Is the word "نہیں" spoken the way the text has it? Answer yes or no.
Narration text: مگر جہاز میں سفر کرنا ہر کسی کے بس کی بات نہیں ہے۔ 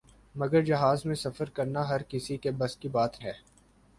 no